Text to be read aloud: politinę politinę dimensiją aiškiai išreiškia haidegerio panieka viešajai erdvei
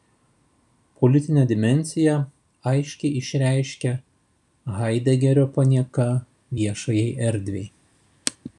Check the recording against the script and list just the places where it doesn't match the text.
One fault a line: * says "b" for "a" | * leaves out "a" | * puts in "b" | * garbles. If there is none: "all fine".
* leaves out "politinę"